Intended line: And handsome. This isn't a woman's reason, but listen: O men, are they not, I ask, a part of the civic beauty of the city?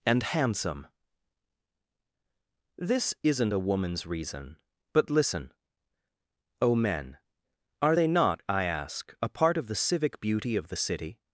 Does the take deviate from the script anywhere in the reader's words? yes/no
no